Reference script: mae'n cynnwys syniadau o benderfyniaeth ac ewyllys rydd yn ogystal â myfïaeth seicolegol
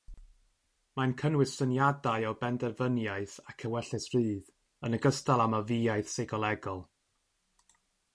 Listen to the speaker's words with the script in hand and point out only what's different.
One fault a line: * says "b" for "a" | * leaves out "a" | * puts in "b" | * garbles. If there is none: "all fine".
all fine